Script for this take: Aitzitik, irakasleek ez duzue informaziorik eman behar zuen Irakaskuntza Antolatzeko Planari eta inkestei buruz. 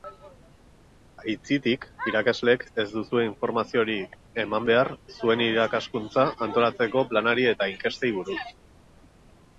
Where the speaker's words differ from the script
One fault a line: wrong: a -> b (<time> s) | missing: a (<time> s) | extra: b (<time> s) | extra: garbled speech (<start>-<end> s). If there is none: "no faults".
no faults